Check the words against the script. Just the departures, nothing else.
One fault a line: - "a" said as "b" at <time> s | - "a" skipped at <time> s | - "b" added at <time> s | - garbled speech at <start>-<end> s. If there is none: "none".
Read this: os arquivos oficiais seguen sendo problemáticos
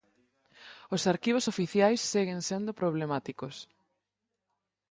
none